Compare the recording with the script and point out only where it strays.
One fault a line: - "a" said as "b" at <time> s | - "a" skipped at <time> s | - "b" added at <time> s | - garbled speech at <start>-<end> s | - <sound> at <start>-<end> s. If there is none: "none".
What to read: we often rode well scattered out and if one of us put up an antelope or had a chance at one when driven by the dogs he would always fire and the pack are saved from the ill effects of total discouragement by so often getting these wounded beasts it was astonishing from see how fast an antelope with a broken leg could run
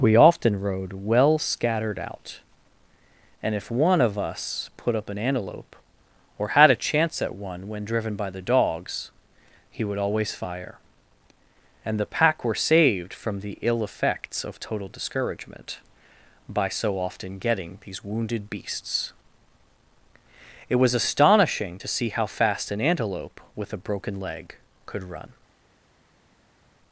- "are" said as "were" at 12.4 s
- "from" said as "to" at 21.7 s